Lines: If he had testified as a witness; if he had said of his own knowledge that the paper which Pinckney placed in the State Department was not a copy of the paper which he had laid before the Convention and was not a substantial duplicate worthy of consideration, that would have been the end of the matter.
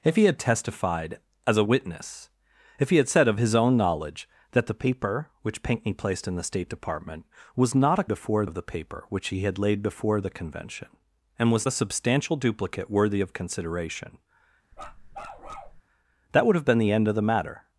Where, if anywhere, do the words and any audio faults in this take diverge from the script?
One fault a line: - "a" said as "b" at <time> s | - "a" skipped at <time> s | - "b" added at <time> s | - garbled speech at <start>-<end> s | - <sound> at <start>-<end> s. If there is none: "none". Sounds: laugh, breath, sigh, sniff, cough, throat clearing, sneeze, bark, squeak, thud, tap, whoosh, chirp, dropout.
- "copy" said as "before" at 8.1 s
- "not" skipped at 11.7 s
- bark at 14.7-15.8 s